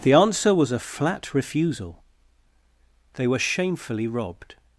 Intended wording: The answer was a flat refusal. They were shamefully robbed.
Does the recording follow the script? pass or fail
pass